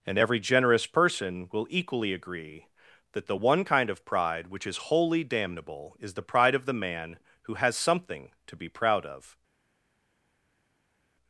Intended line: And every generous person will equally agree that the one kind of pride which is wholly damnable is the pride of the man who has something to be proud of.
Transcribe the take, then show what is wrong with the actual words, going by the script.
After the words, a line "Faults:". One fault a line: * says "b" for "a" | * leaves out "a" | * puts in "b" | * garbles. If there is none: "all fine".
And every generous person will equally agree that the one kind of pride which is wholly damnable is the pride of the man who has something to be proud of.
Faults:
all fine